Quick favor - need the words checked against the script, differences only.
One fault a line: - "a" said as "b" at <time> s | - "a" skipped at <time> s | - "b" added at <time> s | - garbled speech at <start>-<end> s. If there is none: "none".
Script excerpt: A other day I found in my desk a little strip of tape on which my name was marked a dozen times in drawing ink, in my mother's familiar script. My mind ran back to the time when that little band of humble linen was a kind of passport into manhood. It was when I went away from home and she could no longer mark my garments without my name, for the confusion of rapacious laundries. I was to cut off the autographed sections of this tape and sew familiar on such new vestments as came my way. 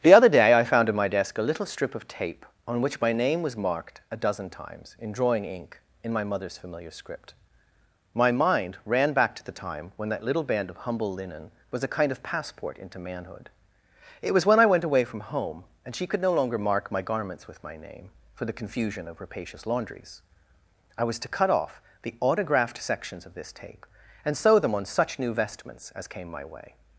- "A" said as "The" at 0.0 s
- "without" said as "with" at 17.5 s
- "familiar" said as "them" at 24.6 s